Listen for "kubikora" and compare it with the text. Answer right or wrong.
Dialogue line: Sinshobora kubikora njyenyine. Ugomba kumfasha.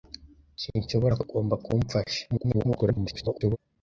wrong